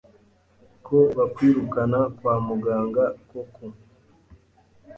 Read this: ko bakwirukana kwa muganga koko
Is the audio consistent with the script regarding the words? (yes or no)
yes